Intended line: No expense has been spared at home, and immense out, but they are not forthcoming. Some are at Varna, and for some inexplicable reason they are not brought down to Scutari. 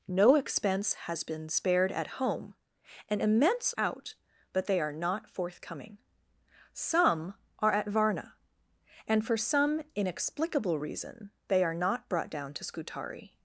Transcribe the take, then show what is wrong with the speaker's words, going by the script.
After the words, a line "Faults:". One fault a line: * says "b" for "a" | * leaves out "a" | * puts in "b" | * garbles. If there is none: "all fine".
No expense has been spared at home, and immense out, but they are not forthcoming. Some are at Varna, and for some inexplicable reason they are not brought down to Scutari.
Faults:
all fine